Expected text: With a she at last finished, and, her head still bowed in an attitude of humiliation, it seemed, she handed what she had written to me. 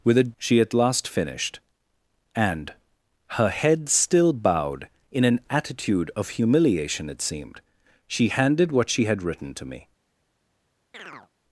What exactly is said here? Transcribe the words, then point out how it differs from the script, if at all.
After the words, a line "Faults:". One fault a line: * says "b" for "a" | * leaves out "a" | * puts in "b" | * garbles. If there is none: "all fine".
With a she at last finished, and, her head still bowed in an attitude of humiliation, it seemed, she handed what she had written to me.
Faults:
all fine